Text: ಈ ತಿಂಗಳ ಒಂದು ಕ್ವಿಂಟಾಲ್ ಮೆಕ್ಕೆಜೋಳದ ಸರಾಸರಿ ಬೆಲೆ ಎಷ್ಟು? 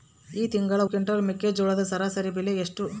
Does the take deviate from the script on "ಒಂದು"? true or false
true